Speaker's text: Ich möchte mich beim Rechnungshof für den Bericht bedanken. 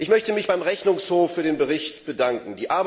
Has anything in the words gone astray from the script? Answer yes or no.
no